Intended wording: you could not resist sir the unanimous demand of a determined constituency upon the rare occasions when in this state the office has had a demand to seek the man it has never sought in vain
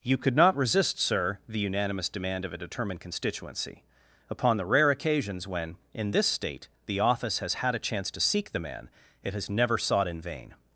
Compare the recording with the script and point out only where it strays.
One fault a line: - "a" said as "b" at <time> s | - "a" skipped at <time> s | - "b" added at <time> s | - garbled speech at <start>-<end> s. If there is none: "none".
- "demand" said as "chance" at 7.8 s